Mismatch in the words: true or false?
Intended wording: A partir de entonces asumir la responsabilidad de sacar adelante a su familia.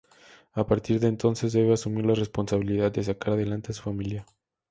true